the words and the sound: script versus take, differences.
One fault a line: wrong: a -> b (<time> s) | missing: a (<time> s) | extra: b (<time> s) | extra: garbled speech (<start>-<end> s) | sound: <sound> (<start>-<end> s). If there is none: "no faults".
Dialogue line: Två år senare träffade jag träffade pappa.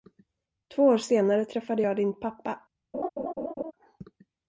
wrong: träffade -> din (2.0 s)
sound: laugh (2.9-3.7 s)